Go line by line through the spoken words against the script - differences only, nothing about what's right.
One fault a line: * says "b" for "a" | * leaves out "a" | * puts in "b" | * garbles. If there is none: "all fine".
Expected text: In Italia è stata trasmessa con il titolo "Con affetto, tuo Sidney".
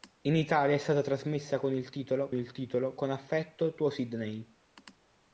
* puts in "il titolo"